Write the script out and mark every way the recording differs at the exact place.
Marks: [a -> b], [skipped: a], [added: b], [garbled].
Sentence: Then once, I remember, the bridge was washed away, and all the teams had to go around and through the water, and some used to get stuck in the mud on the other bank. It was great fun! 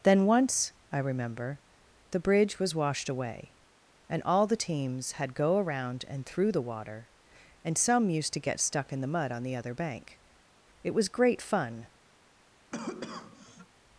Then once, I remember, the bridge was washed away, and all the teams had [skipped: to] go around and through the water, and some used to get stuck in the mud on the other bank. It was great fun!